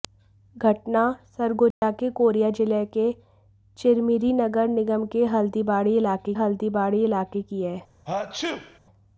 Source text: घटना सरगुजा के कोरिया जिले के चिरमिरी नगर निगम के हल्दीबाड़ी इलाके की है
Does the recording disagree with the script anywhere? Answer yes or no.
yes